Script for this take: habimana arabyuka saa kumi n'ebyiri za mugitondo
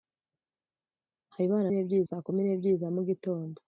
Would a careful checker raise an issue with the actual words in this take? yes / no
yes